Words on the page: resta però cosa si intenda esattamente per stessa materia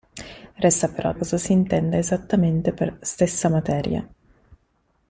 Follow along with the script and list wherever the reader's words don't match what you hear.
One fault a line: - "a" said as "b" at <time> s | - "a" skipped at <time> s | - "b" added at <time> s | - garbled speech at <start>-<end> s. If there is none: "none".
none